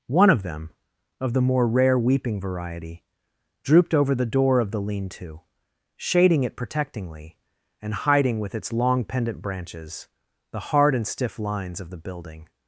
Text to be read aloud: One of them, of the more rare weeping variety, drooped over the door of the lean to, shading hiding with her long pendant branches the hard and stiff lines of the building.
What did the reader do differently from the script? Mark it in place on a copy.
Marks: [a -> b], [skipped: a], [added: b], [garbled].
One of them, of the more rare weeping variety, drooped over the door of the lean to, shading [added: it protectingly and] hiding with [her -> its] long pendant branches the hard and stiff lines of the building.